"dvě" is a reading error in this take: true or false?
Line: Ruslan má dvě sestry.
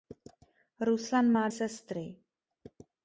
true